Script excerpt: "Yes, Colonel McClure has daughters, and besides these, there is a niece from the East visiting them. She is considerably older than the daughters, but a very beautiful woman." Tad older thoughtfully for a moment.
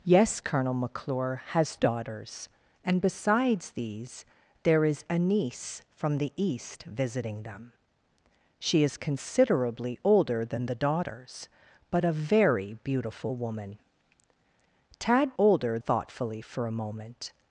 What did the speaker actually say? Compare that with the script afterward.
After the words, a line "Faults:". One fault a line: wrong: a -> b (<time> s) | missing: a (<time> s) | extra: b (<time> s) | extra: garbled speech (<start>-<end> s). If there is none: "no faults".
"Yes, Colonel McClure has daughters, and besides these, there is a niece from the East visiting them. She is considerably older than the daughters, but a very beautiful woman." Tad older thoughtfully for a moment.
Faults:
no faults